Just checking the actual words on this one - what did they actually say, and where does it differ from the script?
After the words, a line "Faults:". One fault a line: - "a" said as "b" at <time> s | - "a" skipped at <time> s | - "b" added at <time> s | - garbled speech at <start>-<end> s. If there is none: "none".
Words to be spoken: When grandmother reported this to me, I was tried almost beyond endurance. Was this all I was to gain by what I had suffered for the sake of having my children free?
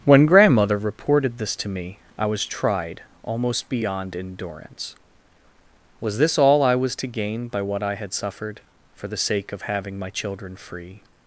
When grandmother reported this to me, I was tried almost beyond endurance. Was this all I was to gain by what I had suffered for the sake of having my children free?
Faults:
none